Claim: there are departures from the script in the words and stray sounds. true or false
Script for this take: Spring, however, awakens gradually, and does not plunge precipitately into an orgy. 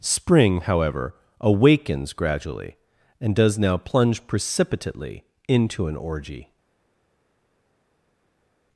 true